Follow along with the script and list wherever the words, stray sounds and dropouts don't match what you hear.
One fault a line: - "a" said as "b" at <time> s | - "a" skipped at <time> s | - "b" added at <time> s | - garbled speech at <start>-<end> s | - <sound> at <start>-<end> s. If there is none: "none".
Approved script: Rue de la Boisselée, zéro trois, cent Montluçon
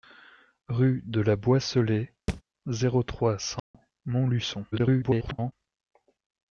- thud at 2.3-2.4 s
- dropout at 3.6-3.7 s
- garbled speech at 4.7-5.5 s